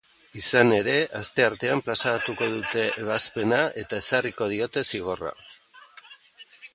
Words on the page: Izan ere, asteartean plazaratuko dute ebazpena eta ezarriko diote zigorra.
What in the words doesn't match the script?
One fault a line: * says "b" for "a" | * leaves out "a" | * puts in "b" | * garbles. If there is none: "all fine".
all fine